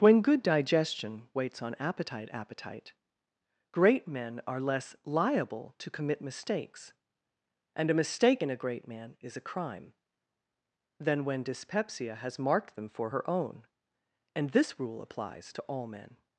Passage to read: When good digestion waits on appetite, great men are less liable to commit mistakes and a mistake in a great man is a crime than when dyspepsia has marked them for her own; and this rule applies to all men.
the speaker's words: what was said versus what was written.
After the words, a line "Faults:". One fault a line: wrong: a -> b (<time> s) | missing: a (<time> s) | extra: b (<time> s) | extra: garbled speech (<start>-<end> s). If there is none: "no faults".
When good digestion waits on appetite appetite, great men are less liable to commit mistakes and a mistake in a great man is a crime than when dyspepsia has marked them for her own; and this rule applies to all men.
Faults:
extra: appetite (2.3 s)